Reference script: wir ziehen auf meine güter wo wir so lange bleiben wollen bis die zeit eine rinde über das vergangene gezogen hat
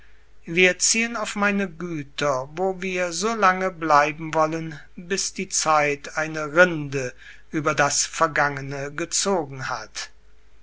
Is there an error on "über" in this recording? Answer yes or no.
no